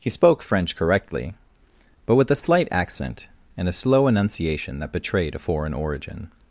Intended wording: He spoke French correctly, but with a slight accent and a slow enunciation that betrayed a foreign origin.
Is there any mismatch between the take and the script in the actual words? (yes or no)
no